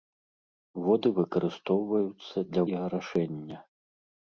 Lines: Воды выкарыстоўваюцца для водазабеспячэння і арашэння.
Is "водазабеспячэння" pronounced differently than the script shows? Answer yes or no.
yes